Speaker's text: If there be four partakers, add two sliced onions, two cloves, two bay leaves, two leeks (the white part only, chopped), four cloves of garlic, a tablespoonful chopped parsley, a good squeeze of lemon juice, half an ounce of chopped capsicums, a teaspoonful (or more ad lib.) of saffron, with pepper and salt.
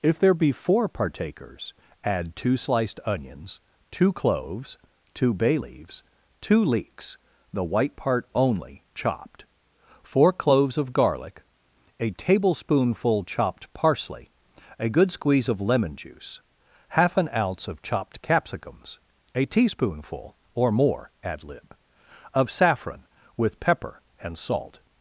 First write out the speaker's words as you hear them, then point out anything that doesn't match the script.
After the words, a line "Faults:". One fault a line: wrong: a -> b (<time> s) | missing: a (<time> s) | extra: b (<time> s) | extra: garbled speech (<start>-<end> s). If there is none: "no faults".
If there be four partakers, add two sliced onions, two cloves, two bay leaves, two leeks (the white part only, chopped), four cloves of garlic, a tablespoonful chopped parsley, a good squeeze of lemon juice, half an ounce of chopped capsicums, a teaspoonful (or more ad lib.) of saffron, with pepper and salt.
Faults:
no faults